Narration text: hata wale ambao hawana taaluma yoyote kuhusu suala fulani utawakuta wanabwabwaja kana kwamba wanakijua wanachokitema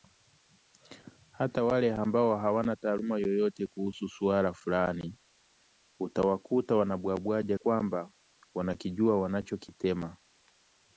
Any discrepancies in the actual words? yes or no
yes